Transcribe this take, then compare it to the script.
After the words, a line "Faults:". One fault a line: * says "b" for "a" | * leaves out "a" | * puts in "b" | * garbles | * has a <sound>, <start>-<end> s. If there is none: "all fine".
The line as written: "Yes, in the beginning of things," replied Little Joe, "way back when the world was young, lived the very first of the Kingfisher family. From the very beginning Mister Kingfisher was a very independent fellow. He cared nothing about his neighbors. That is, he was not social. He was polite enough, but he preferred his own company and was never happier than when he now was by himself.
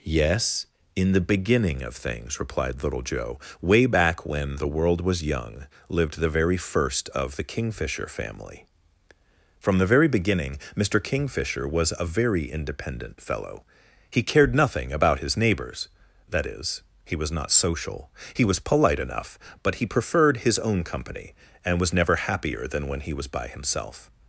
"Yes, in the beginning of things," replied Little Joe, "way back when the world was young, lived the very first of the Kingfisher family. From the very beginning Mister Kingfisher was a very independent fellow. He cared nothing about his neighbors. That is, he was not social. He was polite enough, but he preferred his own company and was never happier than when he was by himself.
Faults:
* leaves out "now"